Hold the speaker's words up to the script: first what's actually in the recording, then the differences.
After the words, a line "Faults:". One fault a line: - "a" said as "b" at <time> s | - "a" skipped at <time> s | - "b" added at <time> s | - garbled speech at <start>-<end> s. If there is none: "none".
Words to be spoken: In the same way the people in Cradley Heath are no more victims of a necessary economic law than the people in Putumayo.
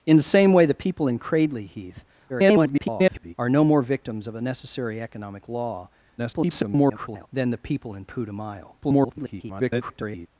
In the same way the people in Cradley Heath [garbled] are no more victims of a necessary economic law [garbled] than the people in Putumayo. [garbled]
Faults:
- garbled speech at 2.3-3.3 s
- garbled speech at 6.2-7.3 s
- garbled speech at 8.8-10.3 s